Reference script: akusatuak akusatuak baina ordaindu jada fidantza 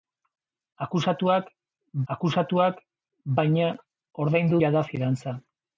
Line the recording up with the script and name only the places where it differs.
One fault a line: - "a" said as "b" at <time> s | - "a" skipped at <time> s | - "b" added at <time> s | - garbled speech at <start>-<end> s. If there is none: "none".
none